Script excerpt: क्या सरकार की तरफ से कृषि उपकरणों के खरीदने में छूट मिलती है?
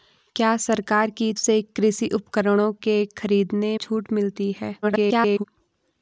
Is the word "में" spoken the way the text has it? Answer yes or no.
no